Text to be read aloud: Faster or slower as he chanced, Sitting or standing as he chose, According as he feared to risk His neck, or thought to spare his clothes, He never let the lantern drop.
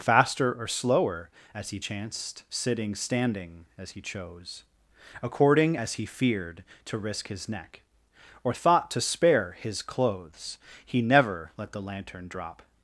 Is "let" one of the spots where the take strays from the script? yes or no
no